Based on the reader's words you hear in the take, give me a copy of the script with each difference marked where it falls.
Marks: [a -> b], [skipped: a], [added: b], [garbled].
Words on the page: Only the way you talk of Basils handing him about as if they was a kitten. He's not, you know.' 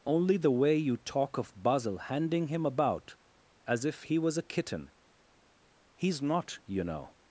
Only the way you talk of [Basils -> Basil] handing him about as if [they -> he] was a kitten. He's not, you know.'